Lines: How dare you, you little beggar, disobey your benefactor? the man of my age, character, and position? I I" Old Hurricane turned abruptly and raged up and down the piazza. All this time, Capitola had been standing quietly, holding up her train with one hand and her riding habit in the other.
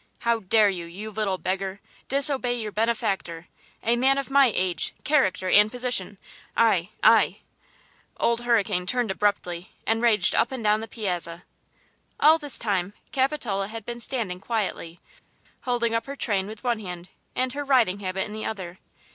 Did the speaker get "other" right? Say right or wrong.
right